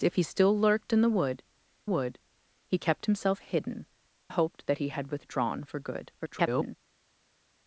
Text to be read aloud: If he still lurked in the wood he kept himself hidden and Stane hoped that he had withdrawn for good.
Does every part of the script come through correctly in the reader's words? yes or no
no